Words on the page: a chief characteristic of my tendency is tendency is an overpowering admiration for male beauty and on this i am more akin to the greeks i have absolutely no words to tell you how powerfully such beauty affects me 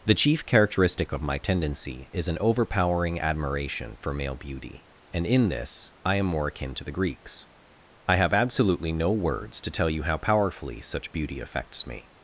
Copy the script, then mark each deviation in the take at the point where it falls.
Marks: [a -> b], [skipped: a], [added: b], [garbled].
[a -> the] chief characteristic of my tendency is [skipped: tendency is] an overpowering admiration for male beauty and [on -> in] this i am more akin to the greeks i have absolutely no words to tell you how powerfully such beauty affects me